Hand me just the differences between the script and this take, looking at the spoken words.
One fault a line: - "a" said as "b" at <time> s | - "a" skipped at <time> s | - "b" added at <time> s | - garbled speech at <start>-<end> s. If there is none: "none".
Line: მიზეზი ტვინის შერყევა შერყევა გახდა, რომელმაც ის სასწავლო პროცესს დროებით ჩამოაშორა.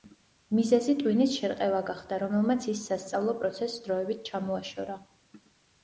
- "შერყევა" skipped at 1.8 s